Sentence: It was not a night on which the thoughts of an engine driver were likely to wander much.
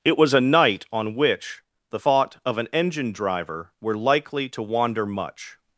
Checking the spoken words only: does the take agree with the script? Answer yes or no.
no